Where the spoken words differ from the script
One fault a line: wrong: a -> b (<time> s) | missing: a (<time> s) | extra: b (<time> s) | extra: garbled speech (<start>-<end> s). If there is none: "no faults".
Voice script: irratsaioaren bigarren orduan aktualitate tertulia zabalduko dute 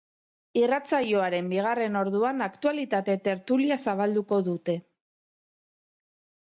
no faults